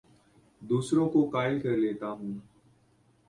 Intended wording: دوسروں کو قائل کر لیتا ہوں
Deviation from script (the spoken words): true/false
false